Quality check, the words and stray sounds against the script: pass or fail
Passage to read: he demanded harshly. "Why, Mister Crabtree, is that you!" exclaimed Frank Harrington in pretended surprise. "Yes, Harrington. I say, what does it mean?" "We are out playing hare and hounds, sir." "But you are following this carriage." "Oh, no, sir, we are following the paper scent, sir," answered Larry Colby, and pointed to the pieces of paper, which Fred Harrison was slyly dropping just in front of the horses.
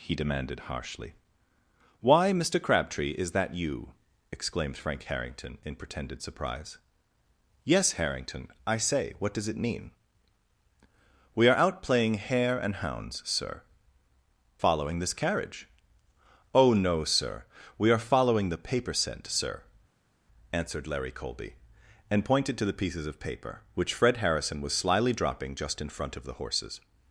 fail